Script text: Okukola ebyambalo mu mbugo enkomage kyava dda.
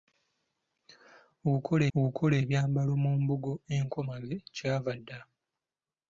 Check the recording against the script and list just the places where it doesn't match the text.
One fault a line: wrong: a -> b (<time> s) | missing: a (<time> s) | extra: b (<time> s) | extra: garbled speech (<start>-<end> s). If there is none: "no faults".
extra: okukola (2.0 s)